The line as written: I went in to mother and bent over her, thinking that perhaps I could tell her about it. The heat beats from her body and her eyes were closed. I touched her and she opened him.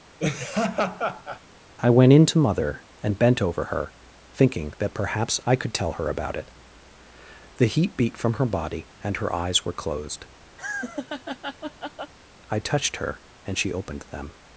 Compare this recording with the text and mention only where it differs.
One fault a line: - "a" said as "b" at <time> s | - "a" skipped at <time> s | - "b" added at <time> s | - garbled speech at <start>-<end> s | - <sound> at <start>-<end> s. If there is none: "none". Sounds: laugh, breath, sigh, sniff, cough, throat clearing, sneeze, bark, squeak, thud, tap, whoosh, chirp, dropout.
- laugh at 0.2-1.4 s
- "beats" said as "beat" at 8.0 s
- laugh at 10.6-12.1 s
- "him" said as "them" at 14.1 s